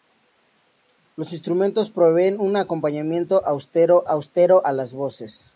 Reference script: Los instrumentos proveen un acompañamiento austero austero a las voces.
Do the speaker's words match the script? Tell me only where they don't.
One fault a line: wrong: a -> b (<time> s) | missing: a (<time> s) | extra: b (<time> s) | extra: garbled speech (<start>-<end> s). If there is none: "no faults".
no faults